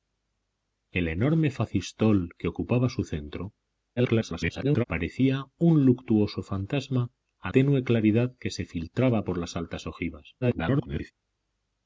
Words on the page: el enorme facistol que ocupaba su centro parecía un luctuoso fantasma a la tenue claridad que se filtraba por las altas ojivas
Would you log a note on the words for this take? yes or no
yes